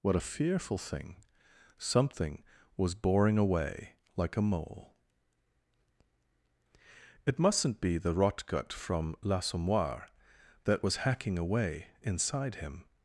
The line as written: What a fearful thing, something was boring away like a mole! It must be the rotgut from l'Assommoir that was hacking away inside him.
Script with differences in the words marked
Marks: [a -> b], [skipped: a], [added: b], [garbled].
What a fearful thing, something was boring away like a mole! It [must -> mustn't] be the rotgut from l'Assommoir that was hacking away inside him.